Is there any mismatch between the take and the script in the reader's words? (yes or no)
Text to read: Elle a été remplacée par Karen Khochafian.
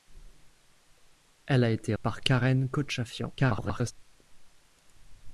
yes